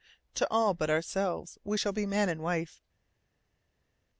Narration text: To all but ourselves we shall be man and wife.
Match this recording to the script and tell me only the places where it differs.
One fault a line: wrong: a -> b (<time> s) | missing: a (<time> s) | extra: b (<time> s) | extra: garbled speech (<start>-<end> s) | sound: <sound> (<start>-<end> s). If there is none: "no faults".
no faults